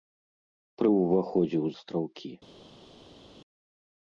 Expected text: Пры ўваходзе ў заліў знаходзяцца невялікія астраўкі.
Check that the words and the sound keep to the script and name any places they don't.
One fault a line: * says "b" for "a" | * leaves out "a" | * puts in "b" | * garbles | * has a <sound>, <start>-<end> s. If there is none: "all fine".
* leaves out "заліў знаходзяцца невялікія"